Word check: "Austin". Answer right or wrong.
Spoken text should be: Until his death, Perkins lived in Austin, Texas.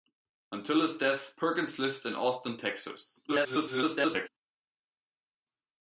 right